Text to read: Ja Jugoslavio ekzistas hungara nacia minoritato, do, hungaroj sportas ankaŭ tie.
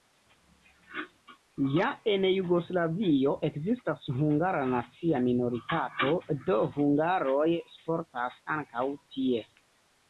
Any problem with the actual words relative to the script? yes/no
yes